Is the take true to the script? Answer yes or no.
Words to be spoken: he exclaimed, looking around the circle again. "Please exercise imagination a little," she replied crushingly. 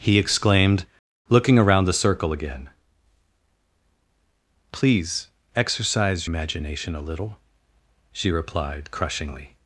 yes